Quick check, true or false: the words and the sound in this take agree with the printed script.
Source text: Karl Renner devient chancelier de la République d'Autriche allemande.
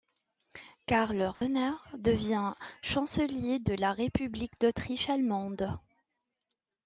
false